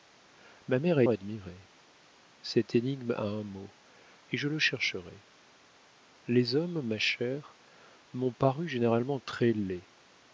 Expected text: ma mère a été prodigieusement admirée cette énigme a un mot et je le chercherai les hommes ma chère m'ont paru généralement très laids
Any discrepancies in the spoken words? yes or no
yes